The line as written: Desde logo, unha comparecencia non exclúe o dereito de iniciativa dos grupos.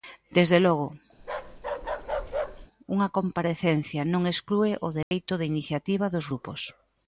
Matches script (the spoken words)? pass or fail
pass